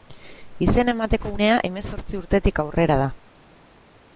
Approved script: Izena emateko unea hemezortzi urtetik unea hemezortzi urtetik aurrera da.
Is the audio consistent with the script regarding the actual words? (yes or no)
no